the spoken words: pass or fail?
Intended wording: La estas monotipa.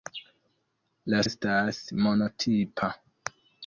pass